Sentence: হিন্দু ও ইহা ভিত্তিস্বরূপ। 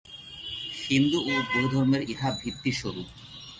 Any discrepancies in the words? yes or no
yes